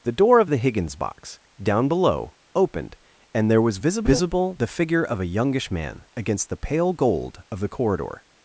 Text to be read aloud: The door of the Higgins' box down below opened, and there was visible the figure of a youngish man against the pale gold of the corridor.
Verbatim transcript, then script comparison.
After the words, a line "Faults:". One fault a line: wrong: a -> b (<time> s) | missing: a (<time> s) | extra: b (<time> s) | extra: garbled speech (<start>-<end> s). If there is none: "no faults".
The door of the Higgins' box down below opened, and there was visible visible the figure of a youngish man against the pale gold of the corridor.
Faults:
extra: visible (4.1 s)